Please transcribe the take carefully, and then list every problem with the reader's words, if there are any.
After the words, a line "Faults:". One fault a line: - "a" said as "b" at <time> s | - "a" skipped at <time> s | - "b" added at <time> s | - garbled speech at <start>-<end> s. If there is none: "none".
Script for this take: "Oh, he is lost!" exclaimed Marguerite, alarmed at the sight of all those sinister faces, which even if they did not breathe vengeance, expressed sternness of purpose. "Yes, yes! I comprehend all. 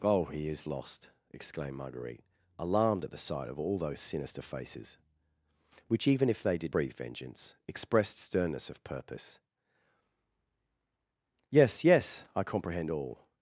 "Oh, he is lost!" exclaimed Marguerite, alarmed at the sight of all those sinister faces, which even if they did breathe vengeance, expressed sternness of purpose. "Yes, yes! I comprehend all.
Faults:
- "not" skipped at 6.7 s